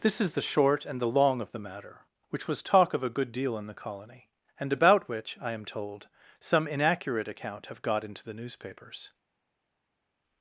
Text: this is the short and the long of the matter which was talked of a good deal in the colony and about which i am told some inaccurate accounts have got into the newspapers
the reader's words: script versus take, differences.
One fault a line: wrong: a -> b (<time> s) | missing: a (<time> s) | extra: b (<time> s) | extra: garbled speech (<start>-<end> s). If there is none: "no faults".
wrong: talked -> talk (2.6 s)
wrong: accounts -> account (7.3 s)